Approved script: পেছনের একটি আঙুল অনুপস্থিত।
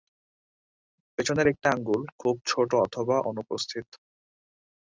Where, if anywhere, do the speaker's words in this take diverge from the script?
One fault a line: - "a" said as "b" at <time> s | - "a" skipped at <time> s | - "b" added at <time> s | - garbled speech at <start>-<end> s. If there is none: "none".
- "খুব ছোট অথবা" added at 2.2 s